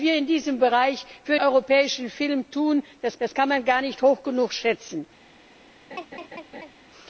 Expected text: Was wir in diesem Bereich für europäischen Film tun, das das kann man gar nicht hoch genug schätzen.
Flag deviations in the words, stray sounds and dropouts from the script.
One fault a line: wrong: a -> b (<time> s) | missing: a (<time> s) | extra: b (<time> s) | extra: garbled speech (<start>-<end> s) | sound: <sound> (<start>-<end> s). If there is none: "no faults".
sound: laugh (5.9-6.7 s)